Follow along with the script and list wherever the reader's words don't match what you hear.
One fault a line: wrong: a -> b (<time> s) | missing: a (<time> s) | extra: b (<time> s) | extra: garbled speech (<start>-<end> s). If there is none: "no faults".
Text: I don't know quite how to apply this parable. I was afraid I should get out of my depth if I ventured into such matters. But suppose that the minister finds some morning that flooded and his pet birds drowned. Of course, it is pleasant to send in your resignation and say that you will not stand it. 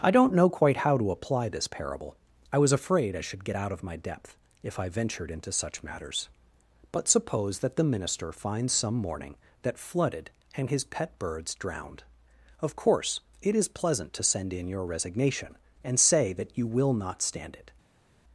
no faults